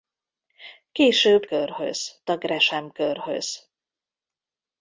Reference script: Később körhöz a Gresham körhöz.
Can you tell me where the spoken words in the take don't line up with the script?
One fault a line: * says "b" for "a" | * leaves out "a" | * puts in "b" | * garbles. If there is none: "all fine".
all fine